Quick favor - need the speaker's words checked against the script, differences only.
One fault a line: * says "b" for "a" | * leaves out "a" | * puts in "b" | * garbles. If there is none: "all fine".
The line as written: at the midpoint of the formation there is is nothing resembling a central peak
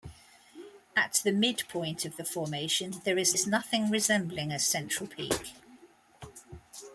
all fine